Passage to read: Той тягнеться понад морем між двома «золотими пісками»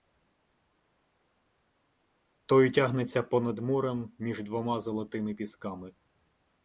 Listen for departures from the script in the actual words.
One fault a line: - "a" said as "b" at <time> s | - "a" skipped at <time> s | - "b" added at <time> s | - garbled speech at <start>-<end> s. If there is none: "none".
none